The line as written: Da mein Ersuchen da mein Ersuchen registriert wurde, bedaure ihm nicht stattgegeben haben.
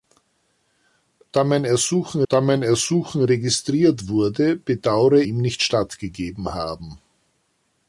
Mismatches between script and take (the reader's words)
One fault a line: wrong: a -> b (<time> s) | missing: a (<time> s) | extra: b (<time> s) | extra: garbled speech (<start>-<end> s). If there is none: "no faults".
no faults